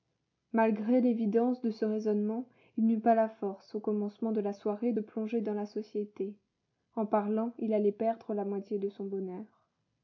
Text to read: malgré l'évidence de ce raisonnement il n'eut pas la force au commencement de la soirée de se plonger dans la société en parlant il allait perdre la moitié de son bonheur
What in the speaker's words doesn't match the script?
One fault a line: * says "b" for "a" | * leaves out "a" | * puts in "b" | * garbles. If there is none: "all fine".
* leaves out "de se"